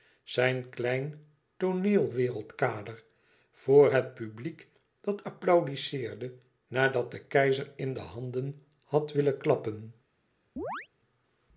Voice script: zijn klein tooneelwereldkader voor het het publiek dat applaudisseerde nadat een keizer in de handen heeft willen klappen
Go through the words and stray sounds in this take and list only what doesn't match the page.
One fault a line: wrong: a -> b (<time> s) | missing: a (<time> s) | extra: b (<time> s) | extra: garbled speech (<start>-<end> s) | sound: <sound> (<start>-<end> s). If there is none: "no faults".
missing: het (4.1 s)
wrong: een -> de (7.1 s)
wrong: heeft -> had (8.8 s)
sound: chirp (10.6-10.9 s)